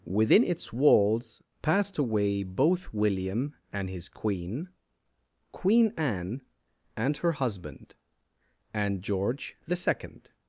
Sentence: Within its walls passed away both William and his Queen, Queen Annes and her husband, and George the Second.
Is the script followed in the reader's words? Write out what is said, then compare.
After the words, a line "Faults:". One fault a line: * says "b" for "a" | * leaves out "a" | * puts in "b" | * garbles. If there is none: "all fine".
Within its walls passed away both William and his Queen, Queen Anne and her husband, and George the Second.
Faults:
* says "Anne" for "Annes"